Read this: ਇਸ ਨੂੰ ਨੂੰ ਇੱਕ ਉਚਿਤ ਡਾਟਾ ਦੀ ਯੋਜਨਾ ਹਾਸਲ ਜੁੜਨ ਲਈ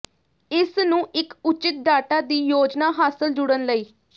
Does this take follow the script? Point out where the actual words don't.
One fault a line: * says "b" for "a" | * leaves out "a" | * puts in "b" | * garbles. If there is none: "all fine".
* leaves out "ਨੂੰ"